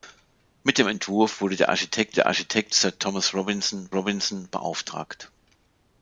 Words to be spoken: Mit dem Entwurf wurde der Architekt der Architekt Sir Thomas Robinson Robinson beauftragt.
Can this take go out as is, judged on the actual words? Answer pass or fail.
pass